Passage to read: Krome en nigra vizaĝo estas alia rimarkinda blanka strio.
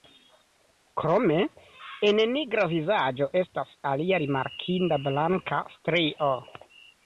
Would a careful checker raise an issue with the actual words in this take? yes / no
no